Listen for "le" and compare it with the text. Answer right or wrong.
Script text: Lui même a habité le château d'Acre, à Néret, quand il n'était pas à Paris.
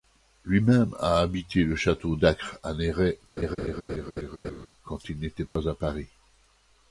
right